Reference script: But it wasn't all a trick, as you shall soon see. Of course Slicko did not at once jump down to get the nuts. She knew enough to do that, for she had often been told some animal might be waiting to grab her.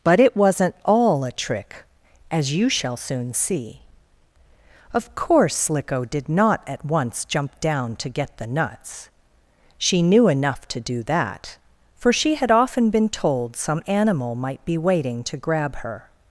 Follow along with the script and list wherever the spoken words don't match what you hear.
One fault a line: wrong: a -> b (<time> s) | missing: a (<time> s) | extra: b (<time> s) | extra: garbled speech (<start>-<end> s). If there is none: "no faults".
no faults